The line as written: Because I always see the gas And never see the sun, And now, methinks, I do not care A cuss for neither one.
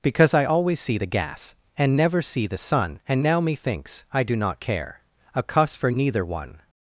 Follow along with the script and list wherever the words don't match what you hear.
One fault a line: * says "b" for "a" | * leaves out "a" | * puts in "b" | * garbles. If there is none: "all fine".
all fine